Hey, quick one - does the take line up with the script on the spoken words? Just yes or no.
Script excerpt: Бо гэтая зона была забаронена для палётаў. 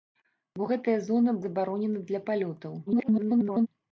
no